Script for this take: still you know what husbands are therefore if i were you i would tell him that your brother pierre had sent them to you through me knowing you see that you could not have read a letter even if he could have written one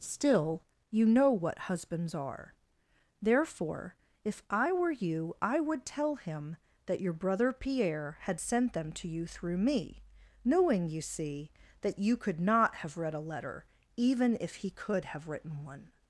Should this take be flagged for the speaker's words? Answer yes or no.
no